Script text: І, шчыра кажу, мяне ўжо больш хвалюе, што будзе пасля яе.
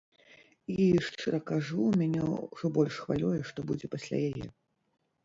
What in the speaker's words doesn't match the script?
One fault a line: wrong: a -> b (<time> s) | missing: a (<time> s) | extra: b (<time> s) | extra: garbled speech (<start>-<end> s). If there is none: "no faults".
no faults